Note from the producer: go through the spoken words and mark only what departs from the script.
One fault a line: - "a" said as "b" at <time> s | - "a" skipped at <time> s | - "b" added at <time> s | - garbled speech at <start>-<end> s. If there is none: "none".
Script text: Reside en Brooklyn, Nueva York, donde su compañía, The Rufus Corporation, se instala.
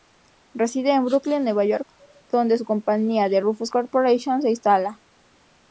none